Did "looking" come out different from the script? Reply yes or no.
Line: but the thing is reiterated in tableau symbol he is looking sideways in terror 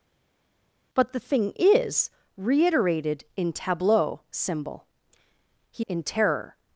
yes